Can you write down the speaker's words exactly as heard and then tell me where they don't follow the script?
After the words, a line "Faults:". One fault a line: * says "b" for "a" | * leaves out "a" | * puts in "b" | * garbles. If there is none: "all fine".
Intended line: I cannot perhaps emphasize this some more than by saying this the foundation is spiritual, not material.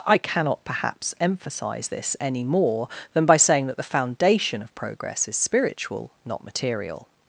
I cannot perhaps emphasize this any more than by saying that the foundation of progress is spiritual, not material.
Faults:
* says "any" for "some"
* says "that" for "this"
* puts in "of progress"